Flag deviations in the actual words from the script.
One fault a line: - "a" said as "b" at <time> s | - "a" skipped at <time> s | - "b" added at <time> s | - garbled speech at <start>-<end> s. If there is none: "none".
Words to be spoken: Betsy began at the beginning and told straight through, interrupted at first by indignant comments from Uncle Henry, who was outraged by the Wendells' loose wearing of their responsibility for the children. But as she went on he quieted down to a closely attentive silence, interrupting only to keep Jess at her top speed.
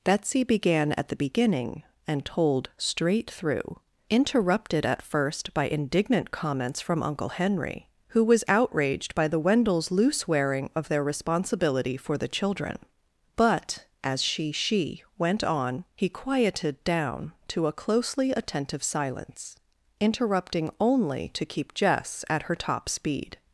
- "she" added at 14.5 s